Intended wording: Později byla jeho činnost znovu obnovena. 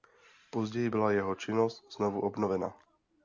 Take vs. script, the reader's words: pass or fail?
pass